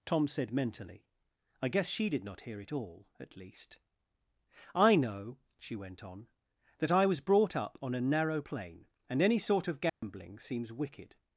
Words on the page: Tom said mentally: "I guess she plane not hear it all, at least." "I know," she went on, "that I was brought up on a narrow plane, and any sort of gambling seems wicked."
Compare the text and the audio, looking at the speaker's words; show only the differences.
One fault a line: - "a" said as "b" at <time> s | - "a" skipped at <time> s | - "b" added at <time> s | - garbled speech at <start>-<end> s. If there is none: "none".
- "plane" said as "did" at 2.1 s